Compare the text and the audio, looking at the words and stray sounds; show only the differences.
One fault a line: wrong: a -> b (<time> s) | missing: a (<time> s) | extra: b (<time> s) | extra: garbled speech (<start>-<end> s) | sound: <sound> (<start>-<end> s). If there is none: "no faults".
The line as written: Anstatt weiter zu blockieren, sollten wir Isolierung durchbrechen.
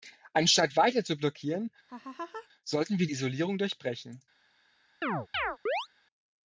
sound: laugh (1.9-2.5 s)
sound: chirp (5.0-5.9 s)